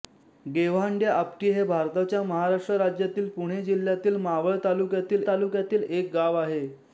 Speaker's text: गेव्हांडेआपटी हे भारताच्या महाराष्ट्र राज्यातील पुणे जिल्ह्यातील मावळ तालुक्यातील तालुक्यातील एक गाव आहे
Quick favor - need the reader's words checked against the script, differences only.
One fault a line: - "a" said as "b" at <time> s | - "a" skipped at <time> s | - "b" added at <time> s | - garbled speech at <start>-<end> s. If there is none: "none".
none